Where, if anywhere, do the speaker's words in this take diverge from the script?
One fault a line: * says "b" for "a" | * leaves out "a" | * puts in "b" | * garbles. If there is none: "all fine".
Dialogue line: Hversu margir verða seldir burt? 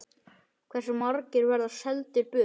all fine